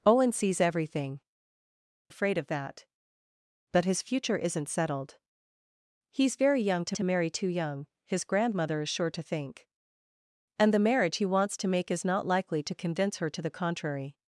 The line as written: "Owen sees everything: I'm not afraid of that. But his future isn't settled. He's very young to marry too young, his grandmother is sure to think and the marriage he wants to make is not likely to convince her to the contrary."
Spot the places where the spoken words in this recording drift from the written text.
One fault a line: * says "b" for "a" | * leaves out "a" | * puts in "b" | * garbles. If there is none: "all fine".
* leaves out "I'm not"
* puts in "to"